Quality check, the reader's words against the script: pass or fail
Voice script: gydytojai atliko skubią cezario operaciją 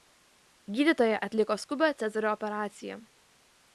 pass